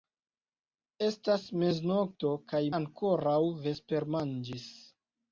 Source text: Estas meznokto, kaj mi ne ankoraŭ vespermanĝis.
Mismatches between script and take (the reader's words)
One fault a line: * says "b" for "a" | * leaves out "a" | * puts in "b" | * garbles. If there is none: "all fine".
* leaves out "mi ne"